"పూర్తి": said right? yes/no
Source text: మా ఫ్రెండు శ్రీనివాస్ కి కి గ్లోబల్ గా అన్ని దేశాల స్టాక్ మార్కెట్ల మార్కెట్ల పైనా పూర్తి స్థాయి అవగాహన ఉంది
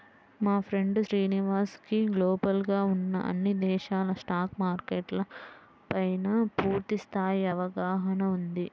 yes